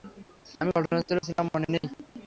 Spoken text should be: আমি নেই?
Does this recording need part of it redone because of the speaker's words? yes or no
yes